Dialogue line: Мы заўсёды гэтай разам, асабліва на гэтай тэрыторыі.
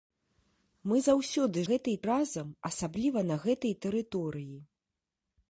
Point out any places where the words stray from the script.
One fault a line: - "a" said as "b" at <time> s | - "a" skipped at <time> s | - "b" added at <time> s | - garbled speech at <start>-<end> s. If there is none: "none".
none